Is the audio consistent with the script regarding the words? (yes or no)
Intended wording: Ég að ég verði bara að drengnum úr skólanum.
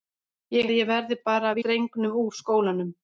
yes